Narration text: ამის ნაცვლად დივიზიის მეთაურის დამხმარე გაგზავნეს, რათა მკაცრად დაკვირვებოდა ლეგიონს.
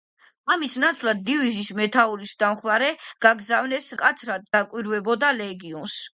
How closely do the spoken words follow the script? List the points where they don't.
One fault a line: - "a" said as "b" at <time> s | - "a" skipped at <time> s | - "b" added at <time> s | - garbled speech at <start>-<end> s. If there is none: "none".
- "რათა" skipped at 3.9 s